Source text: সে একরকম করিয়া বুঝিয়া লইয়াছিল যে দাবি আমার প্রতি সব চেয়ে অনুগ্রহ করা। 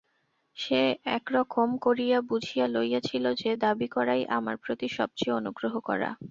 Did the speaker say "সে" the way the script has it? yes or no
yes